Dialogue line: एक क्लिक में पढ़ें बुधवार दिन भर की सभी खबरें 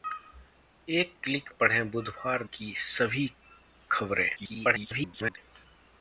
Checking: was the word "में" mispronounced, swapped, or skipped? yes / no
yes